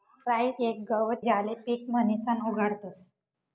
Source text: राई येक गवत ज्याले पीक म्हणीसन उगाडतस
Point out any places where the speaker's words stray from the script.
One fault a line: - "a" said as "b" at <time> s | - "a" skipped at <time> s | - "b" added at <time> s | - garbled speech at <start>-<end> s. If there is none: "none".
none